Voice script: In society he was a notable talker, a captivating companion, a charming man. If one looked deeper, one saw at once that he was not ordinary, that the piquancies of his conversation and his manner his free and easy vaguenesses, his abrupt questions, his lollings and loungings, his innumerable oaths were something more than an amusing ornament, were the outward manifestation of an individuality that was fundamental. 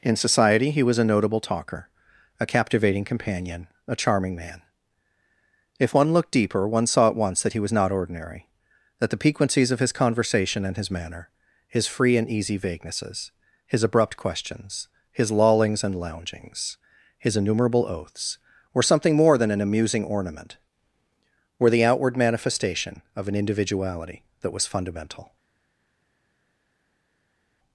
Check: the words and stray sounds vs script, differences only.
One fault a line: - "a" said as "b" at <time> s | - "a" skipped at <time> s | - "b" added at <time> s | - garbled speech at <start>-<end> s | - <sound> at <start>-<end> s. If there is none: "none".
none